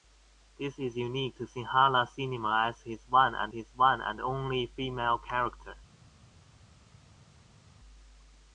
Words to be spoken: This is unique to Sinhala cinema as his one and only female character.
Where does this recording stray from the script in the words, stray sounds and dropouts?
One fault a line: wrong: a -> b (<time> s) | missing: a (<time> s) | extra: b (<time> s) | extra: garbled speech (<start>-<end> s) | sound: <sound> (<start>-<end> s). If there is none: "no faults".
extra: his one and (3.5 s)